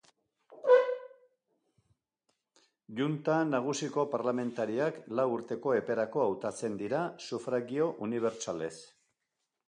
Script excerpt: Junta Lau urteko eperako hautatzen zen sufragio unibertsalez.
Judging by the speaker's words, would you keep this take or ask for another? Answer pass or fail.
fail